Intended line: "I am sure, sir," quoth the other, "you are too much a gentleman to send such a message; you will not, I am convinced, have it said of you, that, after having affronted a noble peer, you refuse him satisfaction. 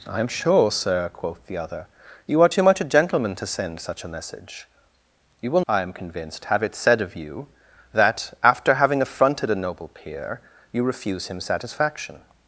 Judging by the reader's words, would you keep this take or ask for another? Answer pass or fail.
fail